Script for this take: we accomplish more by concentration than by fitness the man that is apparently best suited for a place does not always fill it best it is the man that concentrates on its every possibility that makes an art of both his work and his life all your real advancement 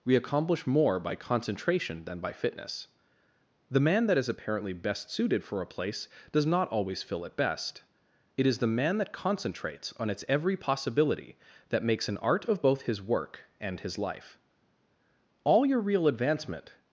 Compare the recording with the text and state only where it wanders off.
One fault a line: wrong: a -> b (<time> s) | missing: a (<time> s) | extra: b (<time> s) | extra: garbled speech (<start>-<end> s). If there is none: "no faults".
no faults